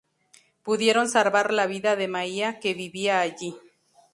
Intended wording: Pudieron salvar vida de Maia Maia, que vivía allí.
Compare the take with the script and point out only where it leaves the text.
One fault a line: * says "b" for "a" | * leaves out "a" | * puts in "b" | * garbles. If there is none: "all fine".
* puts in "la"
* leaves out "Maia"